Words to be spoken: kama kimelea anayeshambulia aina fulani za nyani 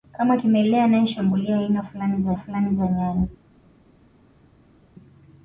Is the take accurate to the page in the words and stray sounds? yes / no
no